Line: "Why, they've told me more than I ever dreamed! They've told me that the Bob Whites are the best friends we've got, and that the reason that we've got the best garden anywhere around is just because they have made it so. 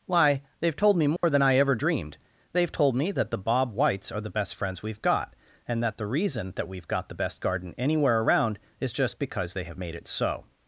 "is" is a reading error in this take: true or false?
false